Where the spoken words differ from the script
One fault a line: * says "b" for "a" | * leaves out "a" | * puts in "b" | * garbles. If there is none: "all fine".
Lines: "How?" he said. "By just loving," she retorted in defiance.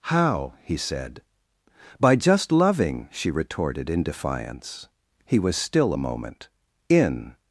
* puts in "He was still a moment in"